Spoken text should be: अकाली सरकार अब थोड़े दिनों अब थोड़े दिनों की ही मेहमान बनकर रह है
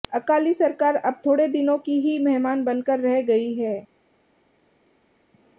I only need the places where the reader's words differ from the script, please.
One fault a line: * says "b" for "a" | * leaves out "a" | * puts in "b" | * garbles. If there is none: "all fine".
* leaves out "अब थोड़े दिनों"
* puts in "गई"